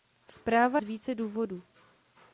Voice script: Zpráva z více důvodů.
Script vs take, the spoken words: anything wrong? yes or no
no